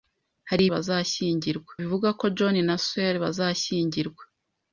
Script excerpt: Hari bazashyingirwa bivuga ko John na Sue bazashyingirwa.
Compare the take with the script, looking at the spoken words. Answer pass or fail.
pass